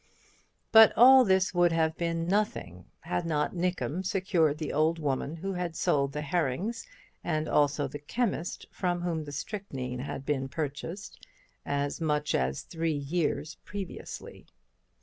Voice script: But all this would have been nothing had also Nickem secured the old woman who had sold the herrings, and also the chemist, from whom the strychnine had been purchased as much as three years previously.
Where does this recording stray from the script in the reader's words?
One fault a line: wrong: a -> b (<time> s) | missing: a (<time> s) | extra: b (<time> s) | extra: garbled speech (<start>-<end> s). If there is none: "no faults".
wrong: also -> not (3.2 s)